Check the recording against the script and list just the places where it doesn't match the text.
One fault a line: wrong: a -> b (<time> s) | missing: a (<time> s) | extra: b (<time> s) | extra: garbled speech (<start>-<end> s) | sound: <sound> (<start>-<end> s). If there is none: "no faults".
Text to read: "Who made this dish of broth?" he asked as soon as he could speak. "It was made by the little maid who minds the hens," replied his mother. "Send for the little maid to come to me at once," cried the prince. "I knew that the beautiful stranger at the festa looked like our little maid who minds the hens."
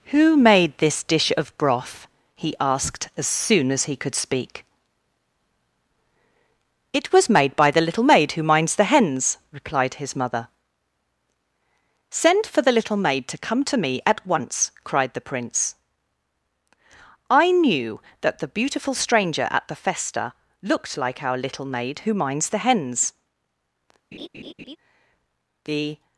sound: laugh (24.1-24.8 s)
extra: The (25.6 s)